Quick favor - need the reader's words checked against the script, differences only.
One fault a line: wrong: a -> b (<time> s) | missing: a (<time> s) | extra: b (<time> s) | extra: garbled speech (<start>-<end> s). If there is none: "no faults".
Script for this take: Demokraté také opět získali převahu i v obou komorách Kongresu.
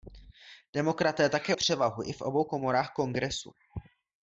missing: opět získali (1.6 s)